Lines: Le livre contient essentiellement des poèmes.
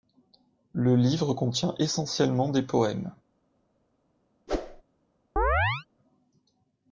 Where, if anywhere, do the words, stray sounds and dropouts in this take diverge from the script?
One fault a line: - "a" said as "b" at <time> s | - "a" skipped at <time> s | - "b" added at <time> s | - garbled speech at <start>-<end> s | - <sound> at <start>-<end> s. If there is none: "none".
- whoosh at 4.5-4.8 s
- chirp at 5.4-5.9 s